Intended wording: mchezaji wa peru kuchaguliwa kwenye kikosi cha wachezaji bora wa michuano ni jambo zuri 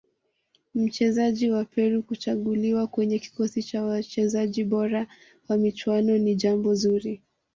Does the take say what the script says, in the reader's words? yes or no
yes